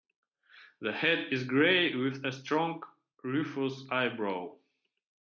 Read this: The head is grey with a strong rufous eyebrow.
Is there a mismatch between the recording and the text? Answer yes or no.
no